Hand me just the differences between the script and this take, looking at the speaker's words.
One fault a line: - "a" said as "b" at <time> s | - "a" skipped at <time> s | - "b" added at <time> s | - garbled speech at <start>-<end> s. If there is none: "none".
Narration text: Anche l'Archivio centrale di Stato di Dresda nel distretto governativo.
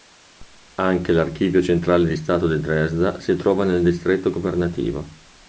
- "si trova" added at 3.2 s